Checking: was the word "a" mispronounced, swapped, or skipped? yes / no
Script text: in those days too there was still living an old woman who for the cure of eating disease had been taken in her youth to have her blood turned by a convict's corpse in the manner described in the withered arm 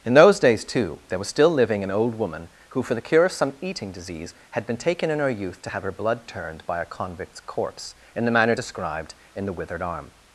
no